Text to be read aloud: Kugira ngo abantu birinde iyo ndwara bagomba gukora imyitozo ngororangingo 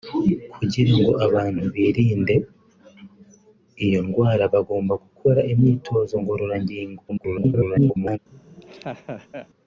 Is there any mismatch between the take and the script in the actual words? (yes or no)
yes